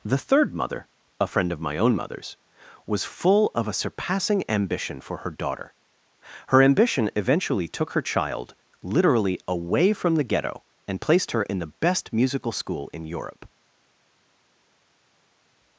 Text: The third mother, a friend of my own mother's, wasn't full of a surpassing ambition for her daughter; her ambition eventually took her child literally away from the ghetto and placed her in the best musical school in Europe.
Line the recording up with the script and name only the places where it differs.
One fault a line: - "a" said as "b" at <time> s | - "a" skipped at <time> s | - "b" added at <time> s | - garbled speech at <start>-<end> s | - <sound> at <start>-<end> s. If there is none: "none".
- "wasn't" said as "was" at 2.9 s